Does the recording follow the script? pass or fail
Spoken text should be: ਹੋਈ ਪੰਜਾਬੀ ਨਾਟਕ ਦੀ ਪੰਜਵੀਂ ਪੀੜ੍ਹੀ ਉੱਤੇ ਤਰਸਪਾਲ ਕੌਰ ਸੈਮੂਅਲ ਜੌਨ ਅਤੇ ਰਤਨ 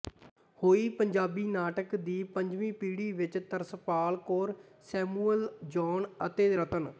fail